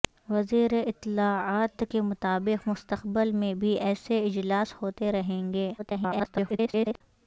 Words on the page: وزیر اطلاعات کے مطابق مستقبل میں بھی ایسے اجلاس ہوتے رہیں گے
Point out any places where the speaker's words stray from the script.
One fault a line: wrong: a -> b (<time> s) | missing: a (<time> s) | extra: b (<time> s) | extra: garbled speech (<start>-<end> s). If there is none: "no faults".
extra: garbled speech (5.8-7.0 s)